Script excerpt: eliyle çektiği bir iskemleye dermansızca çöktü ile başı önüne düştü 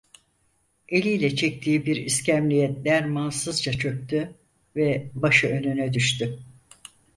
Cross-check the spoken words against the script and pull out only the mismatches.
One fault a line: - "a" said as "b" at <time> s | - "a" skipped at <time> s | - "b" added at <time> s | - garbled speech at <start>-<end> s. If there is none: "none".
- "ile" said as "ve" at 4.8 s